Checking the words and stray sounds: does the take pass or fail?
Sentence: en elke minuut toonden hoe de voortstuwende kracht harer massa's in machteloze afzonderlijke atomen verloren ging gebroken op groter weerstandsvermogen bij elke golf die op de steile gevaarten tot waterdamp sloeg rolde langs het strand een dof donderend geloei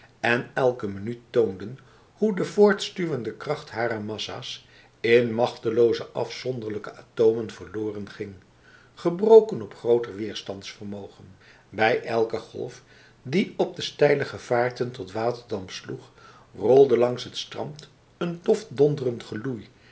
pass